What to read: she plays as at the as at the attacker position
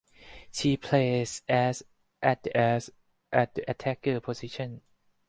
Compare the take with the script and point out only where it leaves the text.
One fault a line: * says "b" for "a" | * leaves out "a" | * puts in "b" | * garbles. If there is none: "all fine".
all fine